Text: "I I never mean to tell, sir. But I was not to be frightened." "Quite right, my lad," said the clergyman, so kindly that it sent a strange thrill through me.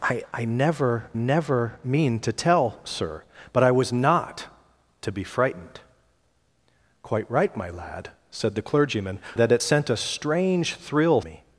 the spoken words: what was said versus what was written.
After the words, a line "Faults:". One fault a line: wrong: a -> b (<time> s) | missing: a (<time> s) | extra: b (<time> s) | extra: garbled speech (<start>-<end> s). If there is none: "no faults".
"I I never never mean to tell, sir. But I was not to be frightened." "Quite right, my lad," said the clergyman, that it sent a strange thrill me.
Faults:
extra: never (1.1 s)
missing: so kindly (9.2 s)
missing: through (11.2 s)